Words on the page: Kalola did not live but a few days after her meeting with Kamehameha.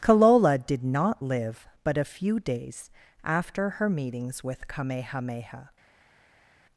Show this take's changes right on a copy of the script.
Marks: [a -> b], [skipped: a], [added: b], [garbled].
Kalola did not live but a few days after her [meeting -> meetings] with Kamehameha.